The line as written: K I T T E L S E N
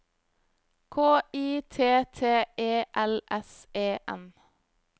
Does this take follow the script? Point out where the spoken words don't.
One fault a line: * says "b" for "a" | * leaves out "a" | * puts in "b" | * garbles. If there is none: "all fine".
all fine